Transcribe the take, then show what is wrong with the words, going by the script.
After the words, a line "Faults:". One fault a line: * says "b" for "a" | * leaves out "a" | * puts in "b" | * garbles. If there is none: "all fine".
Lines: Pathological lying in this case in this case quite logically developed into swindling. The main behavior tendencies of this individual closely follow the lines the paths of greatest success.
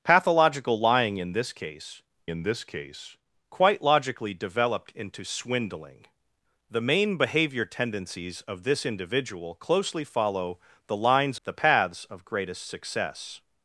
Pathological lying in this case in this case quite logically developed into swindling. The main behavior tendencies of this individual closely follow the lines the paths of greatest success.
Faults:
all fine